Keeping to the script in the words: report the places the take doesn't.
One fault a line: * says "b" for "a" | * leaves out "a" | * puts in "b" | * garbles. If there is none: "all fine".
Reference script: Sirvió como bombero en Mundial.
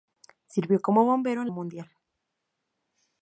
all fine